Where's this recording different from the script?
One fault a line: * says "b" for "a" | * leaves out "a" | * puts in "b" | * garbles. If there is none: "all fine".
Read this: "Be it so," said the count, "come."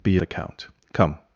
* leaves out "it so said"